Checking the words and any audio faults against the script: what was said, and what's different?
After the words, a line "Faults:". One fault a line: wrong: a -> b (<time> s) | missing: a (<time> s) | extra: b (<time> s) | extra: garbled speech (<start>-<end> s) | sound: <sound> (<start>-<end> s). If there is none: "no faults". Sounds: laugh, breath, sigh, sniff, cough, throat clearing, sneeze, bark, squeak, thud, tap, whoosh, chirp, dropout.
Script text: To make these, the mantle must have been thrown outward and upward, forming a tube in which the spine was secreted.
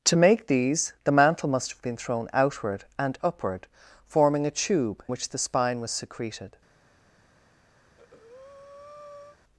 To make these, the mantle must have been thrown outward and upward, forming a tube which the spine was secreted.
Faults:
missing: in (5.0 s)
sound: breath (7.8-9.4 s)